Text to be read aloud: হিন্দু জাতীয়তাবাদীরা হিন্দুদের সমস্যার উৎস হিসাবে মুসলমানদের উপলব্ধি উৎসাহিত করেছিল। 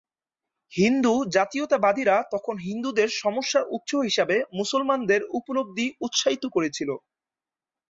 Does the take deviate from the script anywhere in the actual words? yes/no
yes